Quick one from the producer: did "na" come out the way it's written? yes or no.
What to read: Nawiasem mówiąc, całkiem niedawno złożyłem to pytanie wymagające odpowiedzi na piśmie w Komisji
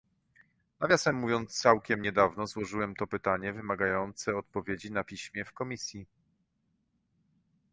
yes